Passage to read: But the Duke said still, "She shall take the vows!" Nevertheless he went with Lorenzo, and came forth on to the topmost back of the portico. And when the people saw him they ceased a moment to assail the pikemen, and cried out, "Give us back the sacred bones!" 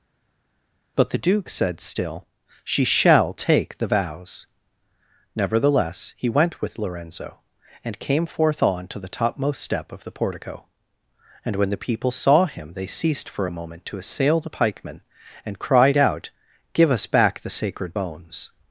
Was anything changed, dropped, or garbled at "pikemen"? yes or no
no